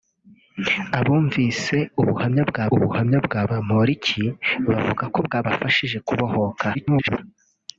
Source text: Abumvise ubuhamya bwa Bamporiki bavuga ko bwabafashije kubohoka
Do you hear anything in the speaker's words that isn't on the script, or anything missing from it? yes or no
yes